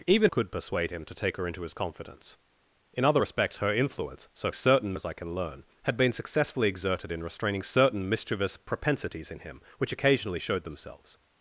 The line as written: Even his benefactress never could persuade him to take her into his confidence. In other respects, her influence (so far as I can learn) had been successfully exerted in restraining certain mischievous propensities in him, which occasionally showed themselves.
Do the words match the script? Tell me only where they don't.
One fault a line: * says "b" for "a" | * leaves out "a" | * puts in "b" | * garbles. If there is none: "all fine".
* leaves out "his benefactress never"
* says "certain" for "far"